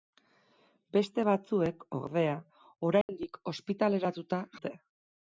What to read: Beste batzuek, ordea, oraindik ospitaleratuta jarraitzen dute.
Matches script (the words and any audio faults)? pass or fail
fail